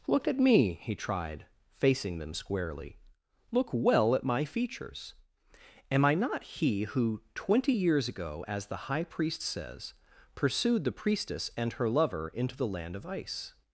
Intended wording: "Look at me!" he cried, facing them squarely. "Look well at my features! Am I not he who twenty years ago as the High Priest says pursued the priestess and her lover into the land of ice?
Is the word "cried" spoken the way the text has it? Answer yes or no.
no